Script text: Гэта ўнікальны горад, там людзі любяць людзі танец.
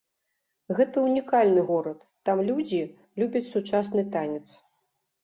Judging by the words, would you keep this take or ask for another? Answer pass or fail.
fail